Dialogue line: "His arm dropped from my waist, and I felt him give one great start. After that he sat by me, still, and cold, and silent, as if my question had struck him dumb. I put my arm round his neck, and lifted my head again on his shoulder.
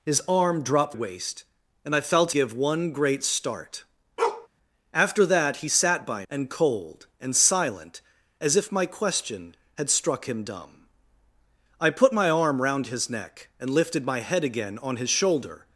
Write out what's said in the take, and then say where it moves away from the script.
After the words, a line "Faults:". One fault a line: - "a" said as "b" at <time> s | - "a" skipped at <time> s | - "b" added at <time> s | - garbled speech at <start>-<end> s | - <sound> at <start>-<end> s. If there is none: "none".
"His arm dropped waist, and I felt give one great start. After that he sat by and cold, and silent, as if my question had struck him dumb. I put my arm round his neck, and lifted my head again on his shoulder.
Faults:
- "from my" skipped at 1.0 s
- "him" skipped at 2.3 s
- bark at 4.2-4.5 s
- "me still" skipped at 6.3 s